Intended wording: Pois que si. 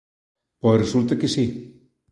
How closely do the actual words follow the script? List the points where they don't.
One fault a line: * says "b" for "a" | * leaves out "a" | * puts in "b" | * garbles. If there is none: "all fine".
* puts in "resulta"